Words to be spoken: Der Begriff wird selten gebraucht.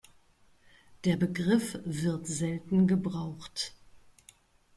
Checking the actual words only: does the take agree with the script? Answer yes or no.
yes